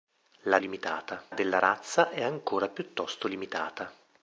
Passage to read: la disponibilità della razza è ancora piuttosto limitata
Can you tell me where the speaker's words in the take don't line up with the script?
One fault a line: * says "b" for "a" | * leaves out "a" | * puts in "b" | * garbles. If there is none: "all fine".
* says "limitata" for "disponibilità"